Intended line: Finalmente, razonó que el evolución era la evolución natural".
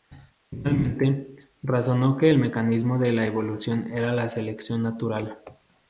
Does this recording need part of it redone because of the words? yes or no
yes